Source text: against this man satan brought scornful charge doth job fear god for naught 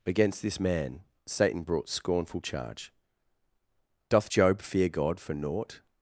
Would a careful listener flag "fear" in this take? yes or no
no